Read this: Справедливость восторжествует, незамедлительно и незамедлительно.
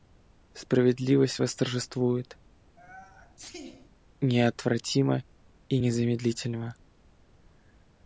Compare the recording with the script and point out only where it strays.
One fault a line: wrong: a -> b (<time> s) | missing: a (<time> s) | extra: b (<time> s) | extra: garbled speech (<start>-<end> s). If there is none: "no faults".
wrong: незамедлительно -> неотвратимо (4.2 s)